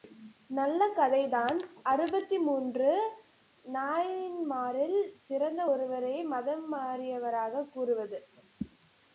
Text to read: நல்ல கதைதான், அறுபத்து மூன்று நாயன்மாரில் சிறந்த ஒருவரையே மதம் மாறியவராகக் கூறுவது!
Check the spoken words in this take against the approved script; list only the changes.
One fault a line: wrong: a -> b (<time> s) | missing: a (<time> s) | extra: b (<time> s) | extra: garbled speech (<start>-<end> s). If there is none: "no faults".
no faults